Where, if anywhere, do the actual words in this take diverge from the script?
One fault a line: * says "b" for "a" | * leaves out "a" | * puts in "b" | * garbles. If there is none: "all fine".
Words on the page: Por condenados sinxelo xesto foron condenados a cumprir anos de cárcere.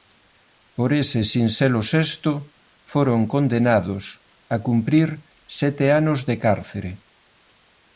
* says "ese" for "condenados"
* puts in "sete"